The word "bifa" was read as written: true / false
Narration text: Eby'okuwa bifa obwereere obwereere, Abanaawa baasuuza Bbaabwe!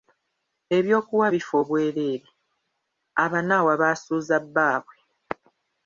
true